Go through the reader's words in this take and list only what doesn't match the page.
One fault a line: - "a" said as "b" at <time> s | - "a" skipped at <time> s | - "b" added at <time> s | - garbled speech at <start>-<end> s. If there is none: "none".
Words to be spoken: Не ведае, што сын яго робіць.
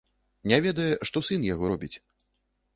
none